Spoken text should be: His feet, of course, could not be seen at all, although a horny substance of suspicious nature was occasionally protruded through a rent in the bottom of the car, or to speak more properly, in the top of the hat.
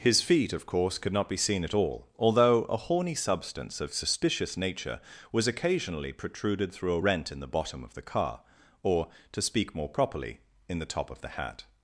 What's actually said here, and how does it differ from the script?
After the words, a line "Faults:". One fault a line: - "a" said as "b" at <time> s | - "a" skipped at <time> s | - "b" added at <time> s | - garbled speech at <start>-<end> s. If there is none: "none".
His feet, of course, could not be seen at all, although a horny substance of suspicious nature was occasionally protruded through a rent in the bottom of the car, or to speak more properly, in the top of the hat.
Faults:
none